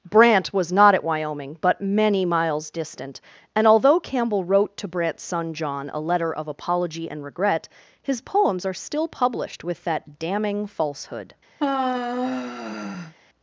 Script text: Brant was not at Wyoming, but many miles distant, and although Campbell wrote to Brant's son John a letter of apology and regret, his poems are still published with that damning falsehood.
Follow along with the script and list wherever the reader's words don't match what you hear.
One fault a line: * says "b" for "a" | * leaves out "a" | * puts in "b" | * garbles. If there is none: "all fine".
all fine